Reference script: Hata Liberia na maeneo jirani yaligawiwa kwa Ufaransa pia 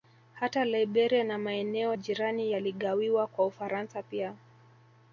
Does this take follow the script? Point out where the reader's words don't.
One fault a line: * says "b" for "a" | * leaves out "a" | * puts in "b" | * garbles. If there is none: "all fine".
all fine